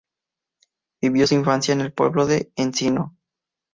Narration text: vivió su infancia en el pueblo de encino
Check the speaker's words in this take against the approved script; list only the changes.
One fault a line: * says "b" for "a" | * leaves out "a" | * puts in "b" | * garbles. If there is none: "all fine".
all fine